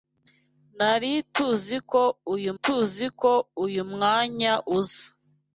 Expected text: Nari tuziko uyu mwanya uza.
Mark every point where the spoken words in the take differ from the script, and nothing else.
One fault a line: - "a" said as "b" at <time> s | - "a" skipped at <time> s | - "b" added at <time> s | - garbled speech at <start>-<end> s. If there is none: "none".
- "tuziko uyu" added at 2.6 s